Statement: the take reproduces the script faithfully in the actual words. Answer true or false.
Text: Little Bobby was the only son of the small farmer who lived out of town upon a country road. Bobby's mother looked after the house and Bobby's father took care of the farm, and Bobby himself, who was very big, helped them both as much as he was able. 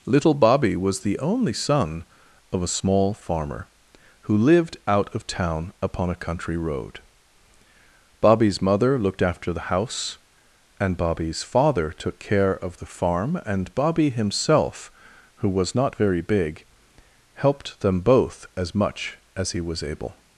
false